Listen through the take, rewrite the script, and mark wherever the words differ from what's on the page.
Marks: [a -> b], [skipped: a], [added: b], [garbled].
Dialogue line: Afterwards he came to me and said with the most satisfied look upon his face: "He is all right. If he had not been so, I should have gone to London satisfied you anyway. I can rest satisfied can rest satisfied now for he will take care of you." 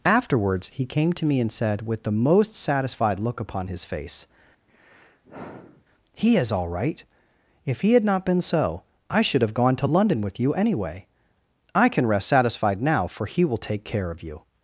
Afterwards he came to me and said with the most satisfied look upon his face: "He is all right. If he had not been so, I should have gone to London [satisfied -> with] you anyway. I can rest satisfied [skipped: can rest satisfied] now for he will take care of you."